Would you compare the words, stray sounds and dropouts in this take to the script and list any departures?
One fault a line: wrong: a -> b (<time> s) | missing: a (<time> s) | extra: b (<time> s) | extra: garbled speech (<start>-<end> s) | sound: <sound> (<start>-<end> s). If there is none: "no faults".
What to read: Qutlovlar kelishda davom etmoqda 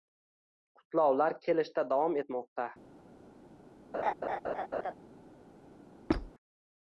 sound: laugh (3.9-4.9 s)
sound: squeak (6.1-6.3 s)